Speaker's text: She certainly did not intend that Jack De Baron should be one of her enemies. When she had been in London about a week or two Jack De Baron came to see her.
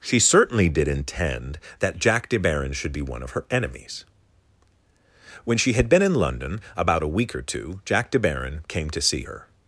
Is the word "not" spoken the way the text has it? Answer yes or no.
no